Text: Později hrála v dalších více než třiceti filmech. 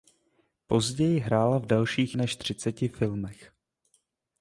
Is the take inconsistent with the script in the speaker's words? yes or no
yes